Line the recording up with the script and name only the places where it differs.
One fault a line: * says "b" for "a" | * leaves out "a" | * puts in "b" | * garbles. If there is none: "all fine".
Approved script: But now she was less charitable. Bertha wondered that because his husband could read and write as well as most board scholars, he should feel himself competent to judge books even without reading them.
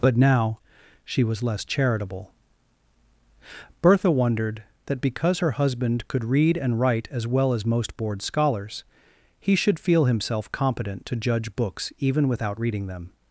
* says "her" for "his"